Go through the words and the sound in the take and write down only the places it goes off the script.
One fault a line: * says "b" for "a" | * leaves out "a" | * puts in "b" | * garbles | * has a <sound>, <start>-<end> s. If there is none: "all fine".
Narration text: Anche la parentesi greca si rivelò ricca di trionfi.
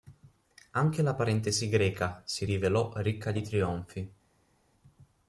all fine